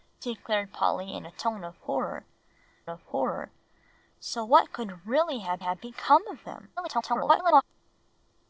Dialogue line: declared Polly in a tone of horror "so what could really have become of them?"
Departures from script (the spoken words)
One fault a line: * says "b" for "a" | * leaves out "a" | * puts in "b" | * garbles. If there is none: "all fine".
* puts in "of horror"
* puts in "have"
* garbles